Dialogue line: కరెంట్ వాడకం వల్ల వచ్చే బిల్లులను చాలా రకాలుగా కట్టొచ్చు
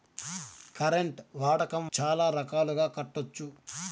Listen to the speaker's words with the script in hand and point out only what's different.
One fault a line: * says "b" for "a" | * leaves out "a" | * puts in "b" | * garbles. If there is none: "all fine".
* leaves out "వల్ల వచ్చే బిల్లులను"